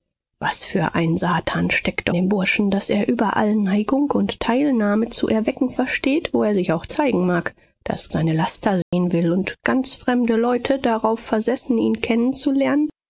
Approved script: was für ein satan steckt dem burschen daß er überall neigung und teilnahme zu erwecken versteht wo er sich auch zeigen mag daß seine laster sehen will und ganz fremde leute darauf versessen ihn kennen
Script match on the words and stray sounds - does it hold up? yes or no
no